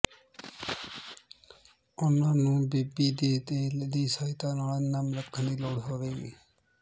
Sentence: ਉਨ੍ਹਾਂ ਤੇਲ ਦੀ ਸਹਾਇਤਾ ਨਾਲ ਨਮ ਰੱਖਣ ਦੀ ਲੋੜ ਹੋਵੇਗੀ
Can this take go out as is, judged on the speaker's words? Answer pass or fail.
fail